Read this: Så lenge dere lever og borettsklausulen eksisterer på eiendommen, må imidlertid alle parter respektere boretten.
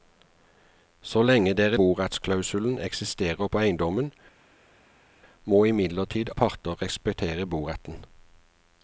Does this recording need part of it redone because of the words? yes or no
yes